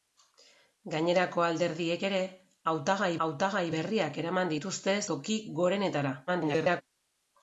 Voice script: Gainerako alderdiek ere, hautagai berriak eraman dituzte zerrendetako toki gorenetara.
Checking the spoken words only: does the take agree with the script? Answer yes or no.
no